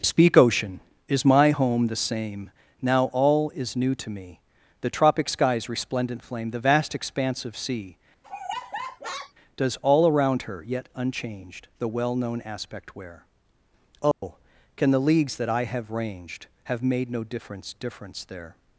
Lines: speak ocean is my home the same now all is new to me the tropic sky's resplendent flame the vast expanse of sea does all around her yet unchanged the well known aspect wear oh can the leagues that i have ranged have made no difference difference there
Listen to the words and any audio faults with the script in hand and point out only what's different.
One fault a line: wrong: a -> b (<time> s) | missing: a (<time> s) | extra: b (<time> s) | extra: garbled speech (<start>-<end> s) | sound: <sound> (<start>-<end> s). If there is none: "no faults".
sound: laugh (8.2-9.3 s)
sound: dropout (14.1-14.2 s)